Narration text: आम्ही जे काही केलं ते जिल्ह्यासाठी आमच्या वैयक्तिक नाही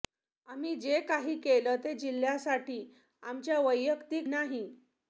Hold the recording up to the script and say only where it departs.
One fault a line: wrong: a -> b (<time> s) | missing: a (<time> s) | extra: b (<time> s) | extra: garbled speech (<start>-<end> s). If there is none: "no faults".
no faults